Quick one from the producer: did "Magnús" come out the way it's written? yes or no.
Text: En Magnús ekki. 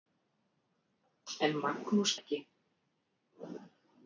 yes